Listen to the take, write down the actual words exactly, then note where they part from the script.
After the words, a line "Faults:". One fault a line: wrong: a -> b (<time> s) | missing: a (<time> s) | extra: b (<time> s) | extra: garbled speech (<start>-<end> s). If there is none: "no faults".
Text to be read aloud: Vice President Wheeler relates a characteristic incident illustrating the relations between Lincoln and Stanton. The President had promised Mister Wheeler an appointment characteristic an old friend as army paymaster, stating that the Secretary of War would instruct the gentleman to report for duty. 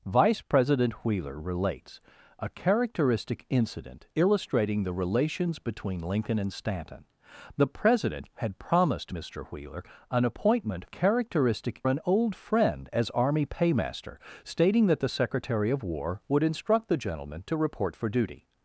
Vice President Wheeler relates a characteristic incident illustrating the relations between Lincoln and Stanton. The President had promised Mister Wheeler an appointment characteristic an old friend as army paymaster, stating that the Secretary of War would instruct the gentleman to report for duty.
Faults:
no faults